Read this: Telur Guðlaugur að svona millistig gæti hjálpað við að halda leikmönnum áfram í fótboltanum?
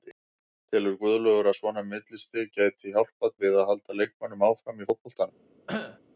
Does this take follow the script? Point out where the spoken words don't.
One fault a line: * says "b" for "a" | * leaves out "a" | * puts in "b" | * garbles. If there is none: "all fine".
all fine